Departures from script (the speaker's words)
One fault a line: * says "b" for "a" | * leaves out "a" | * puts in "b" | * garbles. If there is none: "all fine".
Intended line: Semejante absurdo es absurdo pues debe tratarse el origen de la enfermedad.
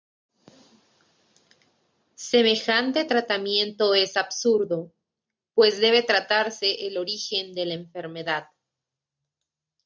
* says "tratamiento" for "absurdo"